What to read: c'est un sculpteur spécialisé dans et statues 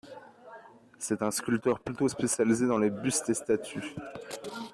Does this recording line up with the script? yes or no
no